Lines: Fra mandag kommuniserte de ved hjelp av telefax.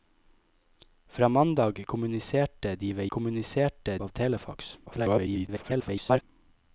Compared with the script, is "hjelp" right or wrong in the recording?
wrong